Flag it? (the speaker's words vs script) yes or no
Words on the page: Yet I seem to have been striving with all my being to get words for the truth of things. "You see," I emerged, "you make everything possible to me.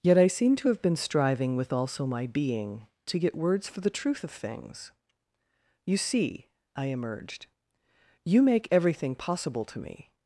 yes